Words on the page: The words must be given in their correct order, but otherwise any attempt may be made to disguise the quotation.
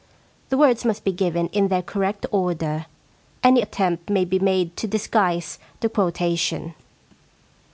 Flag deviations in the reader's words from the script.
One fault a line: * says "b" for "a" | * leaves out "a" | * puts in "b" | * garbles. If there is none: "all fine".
* leaves out "but otherwise"